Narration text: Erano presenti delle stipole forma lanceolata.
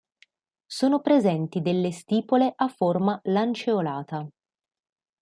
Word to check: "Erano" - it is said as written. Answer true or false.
false